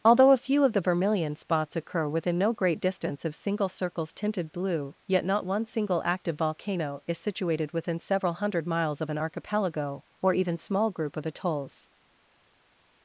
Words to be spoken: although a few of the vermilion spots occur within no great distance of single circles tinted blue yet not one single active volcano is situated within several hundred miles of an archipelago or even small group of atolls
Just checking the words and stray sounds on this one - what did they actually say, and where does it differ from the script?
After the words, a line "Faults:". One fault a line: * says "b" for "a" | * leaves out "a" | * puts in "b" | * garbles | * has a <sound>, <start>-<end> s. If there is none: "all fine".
although a few of the vermilion spots occur within no great distance of single circles tinted blue yet not one single active volcano is situated within several hundred miles of an archipelago or even small group of atolls
Faults:
all fine